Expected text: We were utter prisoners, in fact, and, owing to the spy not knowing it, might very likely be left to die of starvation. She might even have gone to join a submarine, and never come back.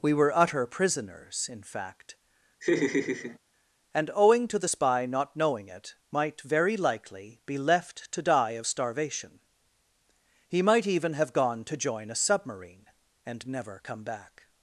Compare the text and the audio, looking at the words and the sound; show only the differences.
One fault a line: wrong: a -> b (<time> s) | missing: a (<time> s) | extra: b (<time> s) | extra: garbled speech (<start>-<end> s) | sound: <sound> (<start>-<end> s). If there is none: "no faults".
sound: laugh (2.6-3.4 s)
wrong: She -> He (10.5 s)